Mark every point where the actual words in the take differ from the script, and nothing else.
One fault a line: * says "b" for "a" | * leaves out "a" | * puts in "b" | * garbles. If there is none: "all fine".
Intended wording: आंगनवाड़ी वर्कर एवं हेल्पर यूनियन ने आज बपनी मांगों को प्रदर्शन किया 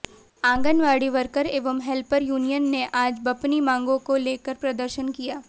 * puts in "लेकर"